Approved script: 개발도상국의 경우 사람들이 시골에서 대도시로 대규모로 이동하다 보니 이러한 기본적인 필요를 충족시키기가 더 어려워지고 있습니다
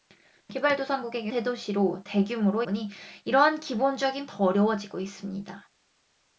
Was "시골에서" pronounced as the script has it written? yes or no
no